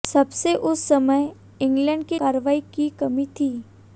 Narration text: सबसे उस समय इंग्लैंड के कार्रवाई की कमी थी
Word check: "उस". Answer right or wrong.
right